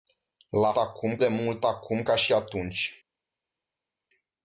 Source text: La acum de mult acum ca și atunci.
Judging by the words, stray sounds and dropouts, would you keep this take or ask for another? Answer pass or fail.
pass